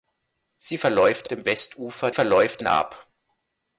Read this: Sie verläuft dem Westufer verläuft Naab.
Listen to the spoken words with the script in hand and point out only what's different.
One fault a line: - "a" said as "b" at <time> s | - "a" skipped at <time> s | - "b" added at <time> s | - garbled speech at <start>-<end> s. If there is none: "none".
none